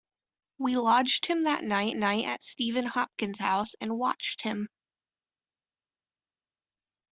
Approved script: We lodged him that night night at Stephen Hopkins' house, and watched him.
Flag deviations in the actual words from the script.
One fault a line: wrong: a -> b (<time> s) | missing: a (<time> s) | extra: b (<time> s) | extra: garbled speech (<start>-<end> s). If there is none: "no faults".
no faults